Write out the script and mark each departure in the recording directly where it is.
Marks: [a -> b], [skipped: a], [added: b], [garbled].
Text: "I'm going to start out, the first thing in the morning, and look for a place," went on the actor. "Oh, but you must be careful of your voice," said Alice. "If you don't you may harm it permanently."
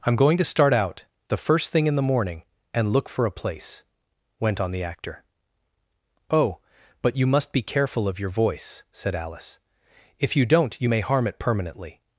"I'm going to start out, the first thing in the morning, and look for a place," went on the actor. "Oh, but you must be careful of your voice," said Alice. "If you don't you may harm it permanently."